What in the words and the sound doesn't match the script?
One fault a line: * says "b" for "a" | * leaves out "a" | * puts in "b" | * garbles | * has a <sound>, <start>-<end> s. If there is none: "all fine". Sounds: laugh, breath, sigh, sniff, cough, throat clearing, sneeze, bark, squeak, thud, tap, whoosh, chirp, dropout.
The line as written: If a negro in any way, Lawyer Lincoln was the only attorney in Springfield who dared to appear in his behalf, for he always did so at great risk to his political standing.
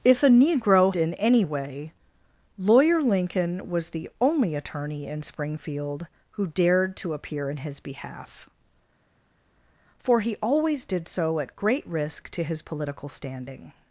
all fine